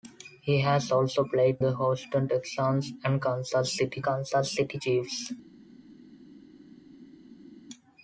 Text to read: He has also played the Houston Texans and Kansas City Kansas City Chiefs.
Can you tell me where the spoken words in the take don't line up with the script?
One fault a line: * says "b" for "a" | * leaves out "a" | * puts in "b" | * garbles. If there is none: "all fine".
all fine